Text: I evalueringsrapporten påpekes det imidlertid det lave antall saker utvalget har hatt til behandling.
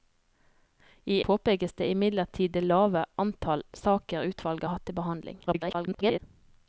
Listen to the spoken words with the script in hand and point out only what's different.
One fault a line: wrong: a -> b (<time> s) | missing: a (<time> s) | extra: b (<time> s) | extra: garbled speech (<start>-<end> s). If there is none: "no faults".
missing: evalueringsrapporten (1.2 s)
missing: har (4.7 s)
extra: garbled speech (5.5-6.2 s)